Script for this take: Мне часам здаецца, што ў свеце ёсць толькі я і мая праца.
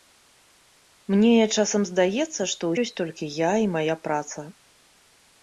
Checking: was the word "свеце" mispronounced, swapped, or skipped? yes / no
yes